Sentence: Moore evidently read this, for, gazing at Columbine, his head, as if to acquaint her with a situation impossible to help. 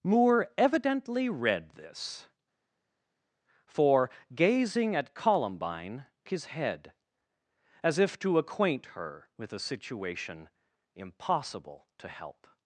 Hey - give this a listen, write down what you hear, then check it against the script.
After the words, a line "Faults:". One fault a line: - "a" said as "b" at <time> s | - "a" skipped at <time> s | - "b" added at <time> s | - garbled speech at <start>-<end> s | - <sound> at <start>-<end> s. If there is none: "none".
Moore evidently read this, for, gazing at Columbine, his head, as if to acquaint her with a situation impossible to help.
Faults:
none